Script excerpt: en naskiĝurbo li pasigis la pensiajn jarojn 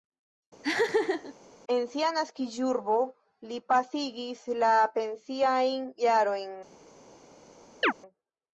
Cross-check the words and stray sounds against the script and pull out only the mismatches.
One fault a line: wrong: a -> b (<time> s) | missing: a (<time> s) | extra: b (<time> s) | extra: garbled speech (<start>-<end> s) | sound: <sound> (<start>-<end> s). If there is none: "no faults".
sound: laugh (0.6-1.3 s)
extra: sia (1.9 s)
sound: chirp (7.8-7.9 s)